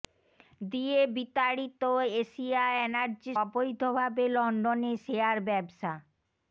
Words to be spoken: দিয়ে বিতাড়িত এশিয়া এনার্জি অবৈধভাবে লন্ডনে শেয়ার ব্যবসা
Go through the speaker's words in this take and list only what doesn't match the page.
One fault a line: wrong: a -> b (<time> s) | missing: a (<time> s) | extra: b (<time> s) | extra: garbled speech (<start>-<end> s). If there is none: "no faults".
no faults